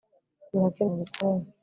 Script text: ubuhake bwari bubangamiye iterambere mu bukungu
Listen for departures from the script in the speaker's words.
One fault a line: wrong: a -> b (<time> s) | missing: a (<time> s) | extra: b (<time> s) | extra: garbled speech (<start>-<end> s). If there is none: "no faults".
missing: bwari bubangamiye iterambere (0.8 s)